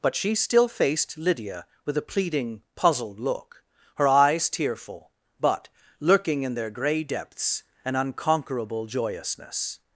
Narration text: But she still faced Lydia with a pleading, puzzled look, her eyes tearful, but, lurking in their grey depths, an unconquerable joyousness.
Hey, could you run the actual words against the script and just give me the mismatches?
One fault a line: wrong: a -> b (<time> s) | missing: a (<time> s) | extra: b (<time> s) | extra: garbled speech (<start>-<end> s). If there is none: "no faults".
no faults